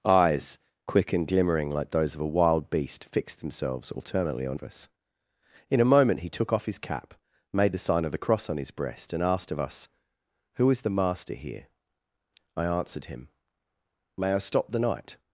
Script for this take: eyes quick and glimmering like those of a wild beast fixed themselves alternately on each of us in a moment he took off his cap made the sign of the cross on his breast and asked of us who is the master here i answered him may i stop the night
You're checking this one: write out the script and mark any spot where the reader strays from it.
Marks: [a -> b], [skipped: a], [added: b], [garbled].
eyes quick and glimmering like those of a wild beast fixed themselves alternately on [skipped: each] of us in a moment he took off his cap made the sign of the cross on his breast and asked of us who is the master here i answered him may i stop the night